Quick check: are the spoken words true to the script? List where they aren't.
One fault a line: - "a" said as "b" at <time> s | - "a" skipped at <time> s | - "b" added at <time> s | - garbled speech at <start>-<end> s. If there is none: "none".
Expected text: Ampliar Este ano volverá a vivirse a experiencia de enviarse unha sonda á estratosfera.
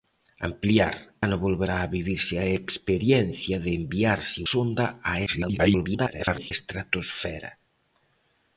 - "Este" skipped at 0.9 s
- "unha" skipped at 4.4 s
- garbled speech at 5.3-6.5 s